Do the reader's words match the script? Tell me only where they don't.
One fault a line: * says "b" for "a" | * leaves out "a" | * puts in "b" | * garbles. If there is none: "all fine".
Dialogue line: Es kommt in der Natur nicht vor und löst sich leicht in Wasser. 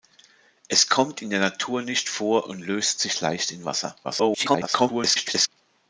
* garbles